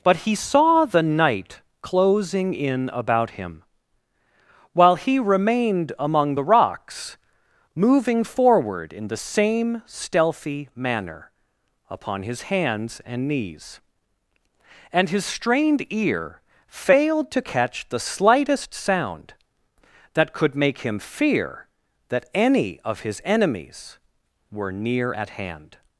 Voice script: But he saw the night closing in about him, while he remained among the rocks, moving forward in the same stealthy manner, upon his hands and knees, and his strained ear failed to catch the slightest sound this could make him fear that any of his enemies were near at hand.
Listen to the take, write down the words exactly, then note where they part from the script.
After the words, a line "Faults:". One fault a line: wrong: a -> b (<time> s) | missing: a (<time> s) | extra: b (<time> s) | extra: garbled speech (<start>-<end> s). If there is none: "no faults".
But he saw the night closing in about him, while he remained among the rocks, moving forward in the same stealthy manner, upon his hands and knees, and his strained ear failed to catch the slightest sound that could make him fear that any of his enemies were near at hand.
Faults:
wrong: this -> that (20.1 s)